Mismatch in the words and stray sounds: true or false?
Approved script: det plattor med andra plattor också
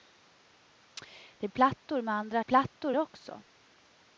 false